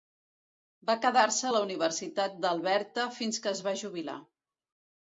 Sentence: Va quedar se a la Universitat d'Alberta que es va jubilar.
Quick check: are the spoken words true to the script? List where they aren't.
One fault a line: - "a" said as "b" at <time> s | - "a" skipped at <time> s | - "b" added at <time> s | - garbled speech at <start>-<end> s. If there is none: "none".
- "fins" added at 3.2 s